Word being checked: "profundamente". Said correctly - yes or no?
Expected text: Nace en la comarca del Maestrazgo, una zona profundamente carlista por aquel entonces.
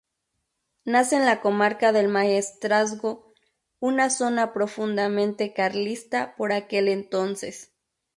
yes